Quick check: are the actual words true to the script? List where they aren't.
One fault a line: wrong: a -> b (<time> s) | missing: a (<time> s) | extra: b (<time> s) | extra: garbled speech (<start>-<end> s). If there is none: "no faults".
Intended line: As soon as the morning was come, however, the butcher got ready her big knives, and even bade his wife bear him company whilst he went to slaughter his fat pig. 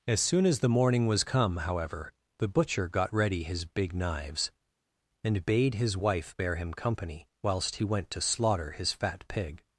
wrong: her -> his (3.4 s)
missing: even (5.4 s)